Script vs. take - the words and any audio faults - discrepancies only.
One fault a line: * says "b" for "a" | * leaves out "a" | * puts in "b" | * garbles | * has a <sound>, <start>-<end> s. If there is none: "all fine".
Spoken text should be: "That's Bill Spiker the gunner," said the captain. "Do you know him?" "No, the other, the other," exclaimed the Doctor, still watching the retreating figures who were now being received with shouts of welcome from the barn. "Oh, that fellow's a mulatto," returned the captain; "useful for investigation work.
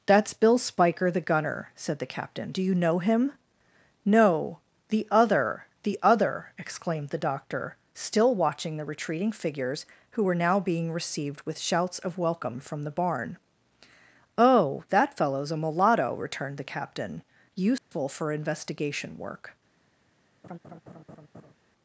* has a dropout, 17.8-17.9 s
* has a laugh, 20.4-21.5 s